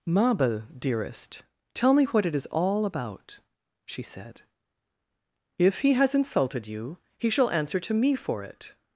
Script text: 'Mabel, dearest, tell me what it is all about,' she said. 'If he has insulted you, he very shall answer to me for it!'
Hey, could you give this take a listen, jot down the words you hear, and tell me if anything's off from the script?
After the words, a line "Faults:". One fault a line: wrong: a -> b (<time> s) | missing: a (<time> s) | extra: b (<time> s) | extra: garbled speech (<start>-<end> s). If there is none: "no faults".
'Mabel, dearest, tell me what it is all about,' she said. 'If he has insulted you, he shall answer to me for it!'
Faults:
missing: very (7.3 s)